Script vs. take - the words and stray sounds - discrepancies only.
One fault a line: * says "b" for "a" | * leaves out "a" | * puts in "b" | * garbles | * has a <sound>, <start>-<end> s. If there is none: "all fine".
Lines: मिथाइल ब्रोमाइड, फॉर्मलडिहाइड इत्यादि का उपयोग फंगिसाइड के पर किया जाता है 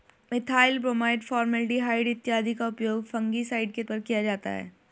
all fine